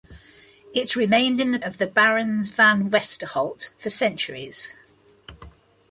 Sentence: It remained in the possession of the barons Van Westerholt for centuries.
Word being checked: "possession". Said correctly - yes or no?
no